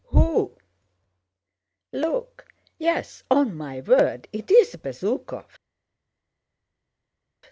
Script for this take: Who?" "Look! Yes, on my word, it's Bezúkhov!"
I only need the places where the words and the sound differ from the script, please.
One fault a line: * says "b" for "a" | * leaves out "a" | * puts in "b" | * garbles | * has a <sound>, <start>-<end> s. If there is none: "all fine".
all fine